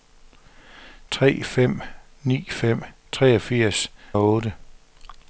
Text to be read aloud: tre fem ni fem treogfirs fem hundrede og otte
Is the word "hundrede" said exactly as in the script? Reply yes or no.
no